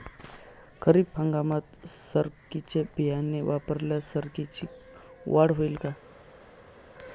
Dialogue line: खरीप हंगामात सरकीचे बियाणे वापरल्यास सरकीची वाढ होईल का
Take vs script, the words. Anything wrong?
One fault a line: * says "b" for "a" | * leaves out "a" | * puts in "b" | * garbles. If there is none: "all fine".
all fine